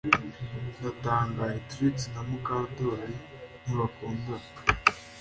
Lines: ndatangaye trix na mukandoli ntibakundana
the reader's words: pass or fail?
pass